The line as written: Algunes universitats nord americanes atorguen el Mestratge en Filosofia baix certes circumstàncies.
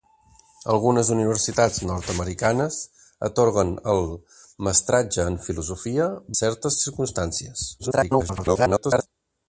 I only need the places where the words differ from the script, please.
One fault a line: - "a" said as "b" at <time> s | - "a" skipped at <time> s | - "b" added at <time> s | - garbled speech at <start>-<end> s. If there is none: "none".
- "baix" skipped at 6.1 s
- garbled speech at 7.8-9.1 s